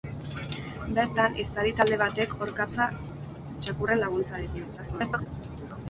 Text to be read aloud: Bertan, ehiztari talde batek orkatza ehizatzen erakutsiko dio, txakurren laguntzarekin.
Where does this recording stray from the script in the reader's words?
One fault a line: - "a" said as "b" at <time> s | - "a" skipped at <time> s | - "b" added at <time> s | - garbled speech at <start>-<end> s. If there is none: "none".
- "ehizatzen erakutsiko dio" skipped at 2.9 s
- garbled speech at 4.8-5.3 s